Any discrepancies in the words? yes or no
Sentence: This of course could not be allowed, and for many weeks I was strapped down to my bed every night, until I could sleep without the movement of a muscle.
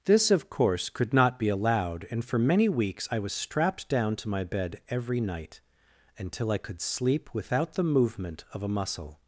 no